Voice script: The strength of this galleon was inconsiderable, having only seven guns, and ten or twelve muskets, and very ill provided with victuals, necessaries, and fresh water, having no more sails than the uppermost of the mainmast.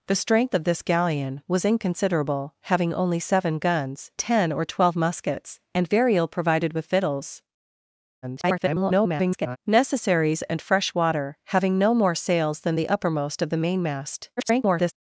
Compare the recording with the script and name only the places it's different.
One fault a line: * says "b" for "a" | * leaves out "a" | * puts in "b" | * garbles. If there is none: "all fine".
* leaves out "and"
* garbles
* garbles